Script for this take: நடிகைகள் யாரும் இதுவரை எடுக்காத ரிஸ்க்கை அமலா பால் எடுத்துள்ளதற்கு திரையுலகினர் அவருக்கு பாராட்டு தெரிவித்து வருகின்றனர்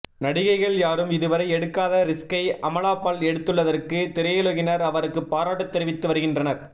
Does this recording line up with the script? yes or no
yes